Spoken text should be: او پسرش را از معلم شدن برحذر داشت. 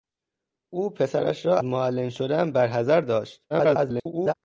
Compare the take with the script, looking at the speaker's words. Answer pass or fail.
fail